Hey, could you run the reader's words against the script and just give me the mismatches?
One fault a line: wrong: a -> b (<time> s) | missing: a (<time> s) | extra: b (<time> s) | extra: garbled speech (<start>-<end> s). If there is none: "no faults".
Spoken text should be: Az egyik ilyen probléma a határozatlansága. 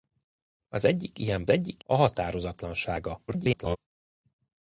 wrong: probléma -> egyik (1.5 s)
extra: garbled speech (3.3-3.8 s)